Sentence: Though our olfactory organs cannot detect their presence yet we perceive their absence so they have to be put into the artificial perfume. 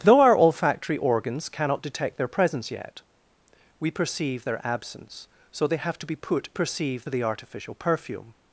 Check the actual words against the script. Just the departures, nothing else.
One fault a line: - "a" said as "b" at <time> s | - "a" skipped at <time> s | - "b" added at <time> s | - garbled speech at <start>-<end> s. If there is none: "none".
- "into" said as "perceive" at 6.5 s